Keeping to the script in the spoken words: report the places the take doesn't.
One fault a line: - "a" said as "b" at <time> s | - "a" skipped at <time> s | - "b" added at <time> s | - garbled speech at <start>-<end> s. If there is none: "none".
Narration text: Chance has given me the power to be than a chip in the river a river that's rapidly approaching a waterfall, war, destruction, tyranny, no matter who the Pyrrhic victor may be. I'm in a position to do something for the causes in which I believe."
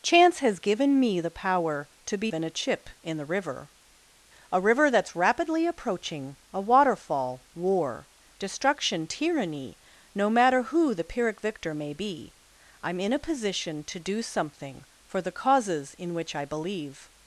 none